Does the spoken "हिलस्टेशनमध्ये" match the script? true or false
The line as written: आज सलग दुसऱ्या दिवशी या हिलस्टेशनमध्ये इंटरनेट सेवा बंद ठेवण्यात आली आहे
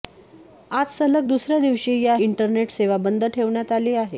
false